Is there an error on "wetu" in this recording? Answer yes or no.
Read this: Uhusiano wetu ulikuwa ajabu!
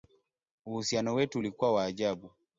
no